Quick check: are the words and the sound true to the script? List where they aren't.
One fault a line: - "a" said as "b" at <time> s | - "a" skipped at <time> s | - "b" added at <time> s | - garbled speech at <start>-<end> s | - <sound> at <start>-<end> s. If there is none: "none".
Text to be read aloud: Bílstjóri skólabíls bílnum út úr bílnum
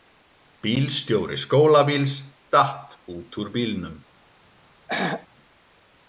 - "bílnum" said as "datt" at 2.5 s
- throat clearing at 4.9-5.3 s